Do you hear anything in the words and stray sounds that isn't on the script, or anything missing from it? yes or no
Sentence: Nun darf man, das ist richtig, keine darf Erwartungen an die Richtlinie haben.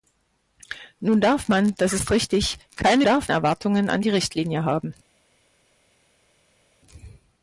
no